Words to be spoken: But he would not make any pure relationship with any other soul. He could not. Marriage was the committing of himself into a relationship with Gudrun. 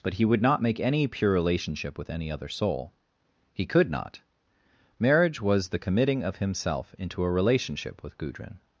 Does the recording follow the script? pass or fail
pass